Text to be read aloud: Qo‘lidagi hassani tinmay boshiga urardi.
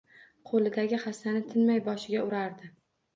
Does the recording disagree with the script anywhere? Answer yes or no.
no